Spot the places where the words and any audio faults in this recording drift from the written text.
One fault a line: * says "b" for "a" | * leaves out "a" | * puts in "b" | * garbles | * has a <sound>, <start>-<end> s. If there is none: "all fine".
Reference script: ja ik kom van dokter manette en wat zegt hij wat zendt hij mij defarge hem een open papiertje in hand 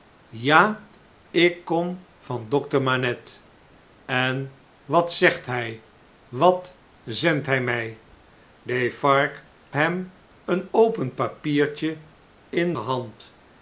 all fine